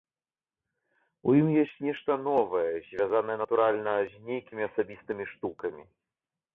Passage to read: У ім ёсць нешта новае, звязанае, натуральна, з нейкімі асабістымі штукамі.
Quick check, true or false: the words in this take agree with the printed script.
true